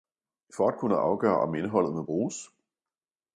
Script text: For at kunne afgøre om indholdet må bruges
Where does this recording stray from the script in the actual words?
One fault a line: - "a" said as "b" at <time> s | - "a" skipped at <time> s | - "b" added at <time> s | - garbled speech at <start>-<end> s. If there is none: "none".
none